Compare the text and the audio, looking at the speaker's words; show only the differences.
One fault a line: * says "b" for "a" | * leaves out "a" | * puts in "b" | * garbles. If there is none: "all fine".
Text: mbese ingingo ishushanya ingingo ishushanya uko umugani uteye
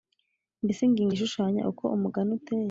* leaves out "ingingo ishushanya"